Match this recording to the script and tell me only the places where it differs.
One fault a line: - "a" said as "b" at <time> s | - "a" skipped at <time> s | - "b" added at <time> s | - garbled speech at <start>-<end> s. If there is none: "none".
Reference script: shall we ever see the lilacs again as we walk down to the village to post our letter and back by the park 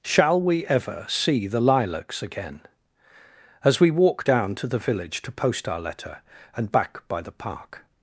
none